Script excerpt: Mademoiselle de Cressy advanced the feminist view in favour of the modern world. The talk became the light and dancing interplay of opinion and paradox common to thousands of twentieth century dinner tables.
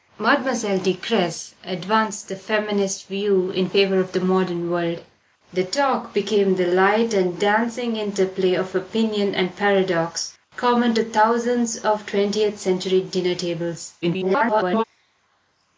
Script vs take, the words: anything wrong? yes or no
yes